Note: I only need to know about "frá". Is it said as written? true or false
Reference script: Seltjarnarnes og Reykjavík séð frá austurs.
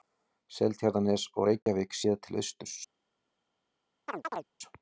false